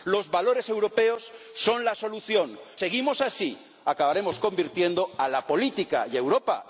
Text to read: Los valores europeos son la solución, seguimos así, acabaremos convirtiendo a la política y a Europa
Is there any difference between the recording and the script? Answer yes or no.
no